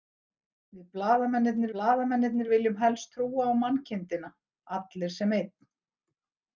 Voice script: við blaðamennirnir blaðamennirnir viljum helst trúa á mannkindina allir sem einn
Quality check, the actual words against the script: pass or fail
pass